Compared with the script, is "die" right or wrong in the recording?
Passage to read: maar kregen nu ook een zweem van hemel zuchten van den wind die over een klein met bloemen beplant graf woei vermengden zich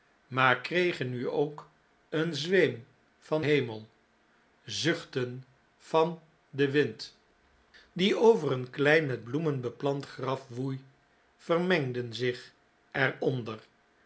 right